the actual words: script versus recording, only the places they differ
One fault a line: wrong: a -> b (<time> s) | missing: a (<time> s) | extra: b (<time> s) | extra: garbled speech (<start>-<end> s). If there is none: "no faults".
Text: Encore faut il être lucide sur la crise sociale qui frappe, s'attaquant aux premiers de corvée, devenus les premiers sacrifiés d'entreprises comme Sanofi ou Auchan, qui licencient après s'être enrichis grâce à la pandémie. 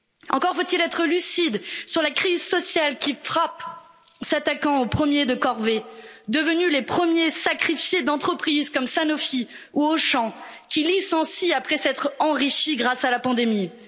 no faults